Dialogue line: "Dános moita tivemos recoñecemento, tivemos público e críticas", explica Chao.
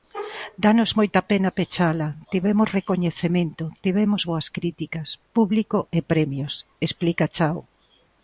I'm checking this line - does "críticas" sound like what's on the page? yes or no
no